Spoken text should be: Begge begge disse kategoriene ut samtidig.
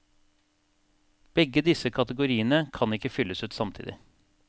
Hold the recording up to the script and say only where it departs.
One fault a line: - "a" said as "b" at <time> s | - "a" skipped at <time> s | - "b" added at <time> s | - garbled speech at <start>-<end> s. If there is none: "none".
- "begge" skipped at 1.6 s
- "kan ikke fylles" added at 2.7 s